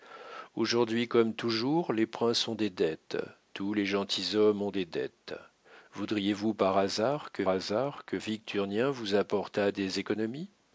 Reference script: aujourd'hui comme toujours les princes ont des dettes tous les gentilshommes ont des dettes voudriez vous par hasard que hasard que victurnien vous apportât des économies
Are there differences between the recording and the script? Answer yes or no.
no